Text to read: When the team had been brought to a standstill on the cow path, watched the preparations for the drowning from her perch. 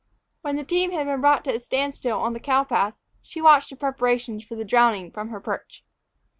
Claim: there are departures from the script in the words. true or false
true